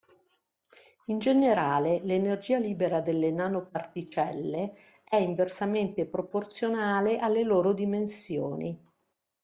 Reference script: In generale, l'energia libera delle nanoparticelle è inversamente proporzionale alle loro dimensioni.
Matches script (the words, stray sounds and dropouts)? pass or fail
pass